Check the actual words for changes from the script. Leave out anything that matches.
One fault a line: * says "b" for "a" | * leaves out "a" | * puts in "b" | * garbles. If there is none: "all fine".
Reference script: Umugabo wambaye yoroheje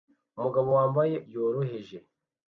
all fine